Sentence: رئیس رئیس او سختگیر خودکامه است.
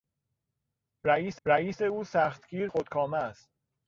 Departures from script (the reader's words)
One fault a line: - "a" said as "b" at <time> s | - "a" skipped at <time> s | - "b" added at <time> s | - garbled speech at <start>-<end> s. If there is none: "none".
none